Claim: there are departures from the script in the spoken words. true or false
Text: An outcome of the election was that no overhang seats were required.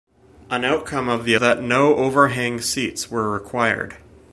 true